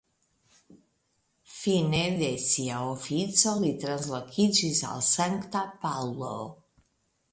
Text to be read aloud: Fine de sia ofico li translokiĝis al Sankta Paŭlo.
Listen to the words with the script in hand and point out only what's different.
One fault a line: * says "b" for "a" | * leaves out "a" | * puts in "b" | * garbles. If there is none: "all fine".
all fine